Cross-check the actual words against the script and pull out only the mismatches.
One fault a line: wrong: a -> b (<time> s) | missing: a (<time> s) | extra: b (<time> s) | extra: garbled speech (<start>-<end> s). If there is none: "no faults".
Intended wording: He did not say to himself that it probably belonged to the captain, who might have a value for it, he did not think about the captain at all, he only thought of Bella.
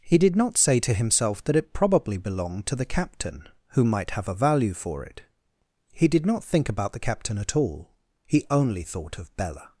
no faults